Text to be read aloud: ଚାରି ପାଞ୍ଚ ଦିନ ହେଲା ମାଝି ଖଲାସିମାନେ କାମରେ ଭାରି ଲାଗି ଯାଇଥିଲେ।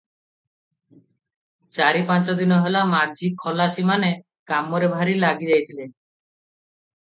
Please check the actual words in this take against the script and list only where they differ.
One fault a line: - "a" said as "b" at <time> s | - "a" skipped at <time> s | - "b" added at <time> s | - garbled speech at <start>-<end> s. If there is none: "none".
none